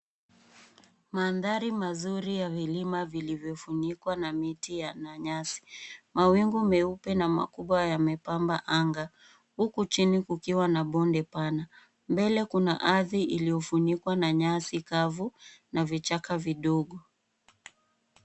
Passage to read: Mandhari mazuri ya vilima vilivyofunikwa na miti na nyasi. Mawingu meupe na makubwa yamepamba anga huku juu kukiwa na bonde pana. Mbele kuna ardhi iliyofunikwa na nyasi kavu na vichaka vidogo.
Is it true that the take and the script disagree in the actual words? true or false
true